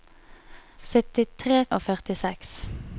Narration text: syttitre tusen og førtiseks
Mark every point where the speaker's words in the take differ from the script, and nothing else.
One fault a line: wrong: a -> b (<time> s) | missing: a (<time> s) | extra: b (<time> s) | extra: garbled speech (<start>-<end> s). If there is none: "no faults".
missing: tusen (1.6 s)